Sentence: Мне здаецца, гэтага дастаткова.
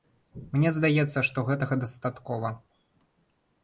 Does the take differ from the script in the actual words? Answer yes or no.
yes